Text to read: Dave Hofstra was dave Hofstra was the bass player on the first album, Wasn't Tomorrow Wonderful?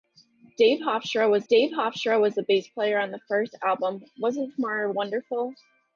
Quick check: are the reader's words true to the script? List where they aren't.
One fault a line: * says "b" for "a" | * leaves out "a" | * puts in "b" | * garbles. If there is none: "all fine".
all fine